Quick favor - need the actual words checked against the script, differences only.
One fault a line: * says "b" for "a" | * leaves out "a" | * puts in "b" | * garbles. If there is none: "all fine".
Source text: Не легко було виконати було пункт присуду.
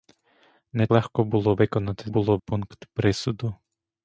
all fine